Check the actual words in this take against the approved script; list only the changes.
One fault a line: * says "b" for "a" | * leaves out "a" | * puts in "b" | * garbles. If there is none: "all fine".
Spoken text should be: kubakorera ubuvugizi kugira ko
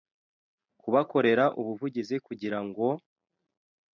* says "ngo" for "ko"